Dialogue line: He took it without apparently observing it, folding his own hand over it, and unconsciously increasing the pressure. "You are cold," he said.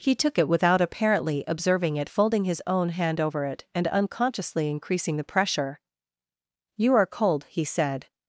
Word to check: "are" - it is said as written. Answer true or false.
true